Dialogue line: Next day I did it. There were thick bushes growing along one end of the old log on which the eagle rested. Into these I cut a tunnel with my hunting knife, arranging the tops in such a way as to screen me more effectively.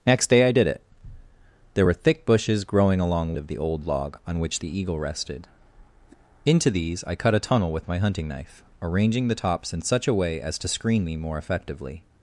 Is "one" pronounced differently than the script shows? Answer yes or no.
yes